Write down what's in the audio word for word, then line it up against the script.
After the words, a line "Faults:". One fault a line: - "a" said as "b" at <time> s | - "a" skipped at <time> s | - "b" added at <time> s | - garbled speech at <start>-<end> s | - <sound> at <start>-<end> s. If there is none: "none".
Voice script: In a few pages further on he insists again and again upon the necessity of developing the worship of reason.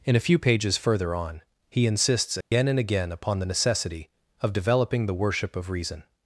In a few pages further on he insists again and again upon the necessity of developing the worship of reason.
Faults:
- dropout at 2.4-2.5 s